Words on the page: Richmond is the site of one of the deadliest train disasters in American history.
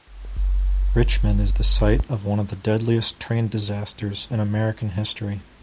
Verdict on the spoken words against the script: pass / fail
pass